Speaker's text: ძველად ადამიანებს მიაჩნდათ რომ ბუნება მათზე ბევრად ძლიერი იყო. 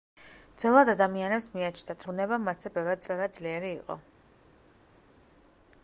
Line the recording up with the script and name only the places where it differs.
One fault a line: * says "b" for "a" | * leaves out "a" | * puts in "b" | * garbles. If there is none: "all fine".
* leaves out "რომ"
* puts in "ბევრად"